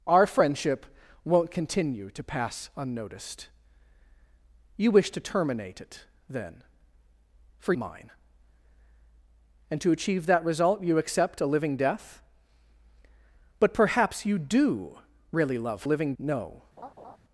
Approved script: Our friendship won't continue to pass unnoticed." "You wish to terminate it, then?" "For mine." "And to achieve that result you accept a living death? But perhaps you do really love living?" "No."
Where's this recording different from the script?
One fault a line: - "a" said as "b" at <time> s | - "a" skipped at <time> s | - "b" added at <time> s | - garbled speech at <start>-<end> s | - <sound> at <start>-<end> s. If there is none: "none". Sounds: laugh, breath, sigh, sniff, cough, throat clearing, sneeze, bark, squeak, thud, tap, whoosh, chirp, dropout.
- laugh at 16.8-17.2 s